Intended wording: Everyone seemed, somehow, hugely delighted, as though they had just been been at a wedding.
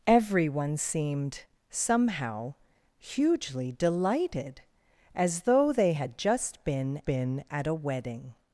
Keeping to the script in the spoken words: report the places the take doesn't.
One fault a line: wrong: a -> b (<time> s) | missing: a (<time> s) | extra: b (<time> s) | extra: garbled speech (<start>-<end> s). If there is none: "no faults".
no faults